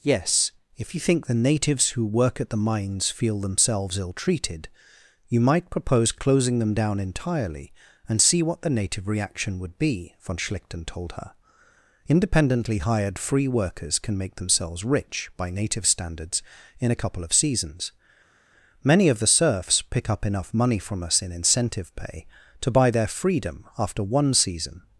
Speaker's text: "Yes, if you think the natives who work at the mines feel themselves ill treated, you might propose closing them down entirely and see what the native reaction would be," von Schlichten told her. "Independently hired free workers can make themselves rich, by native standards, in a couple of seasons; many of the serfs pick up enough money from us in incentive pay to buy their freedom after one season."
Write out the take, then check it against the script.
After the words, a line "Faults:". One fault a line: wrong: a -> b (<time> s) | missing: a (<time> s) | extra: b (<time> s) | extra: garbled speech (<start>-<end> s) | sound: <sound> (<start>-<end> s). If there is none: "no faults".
"Yes, if you think the natives who work at the mines feel themselves ill treated, you might propose closing them down entirely and see what the native reaction would be," von Schlichten told her. "Independently hired free workers can make themselves rich, by native standards, in a couple of seasons; many of the serfs pick up enough money from us in incentive pay to buy their freedom after one season."
Faults:
no faults